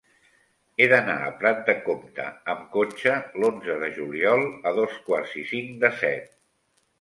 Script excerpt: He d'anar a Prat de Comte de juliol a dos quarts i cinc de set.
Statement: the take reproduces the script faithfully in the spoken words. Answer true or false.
false